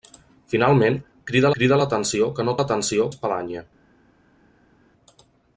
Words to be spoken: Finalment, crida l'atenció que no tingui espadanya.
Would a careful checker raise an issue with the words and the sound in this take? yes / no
yes